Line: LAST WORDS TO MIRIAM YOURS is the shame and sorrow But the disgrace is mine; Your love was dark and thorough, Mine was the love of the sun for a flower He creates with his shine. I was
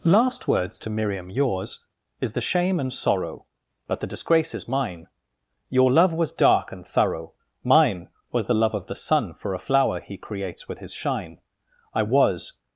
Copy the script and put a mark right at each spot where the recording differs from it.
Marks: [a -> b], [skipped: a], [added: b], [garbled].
LAST WORDS TO MIRIAM YOURS is the shame and sorrow But the disgrace is mine; Your love was dark and thorough, Mine was the love of the sun for a flower He creates with his shine. I was